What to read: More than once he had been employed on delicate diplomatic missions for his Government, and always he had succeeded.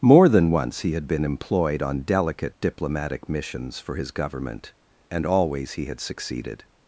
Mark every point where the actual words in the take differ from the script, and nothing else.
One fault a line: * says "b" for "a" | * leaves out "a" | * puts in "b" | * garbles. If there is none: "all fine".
all fine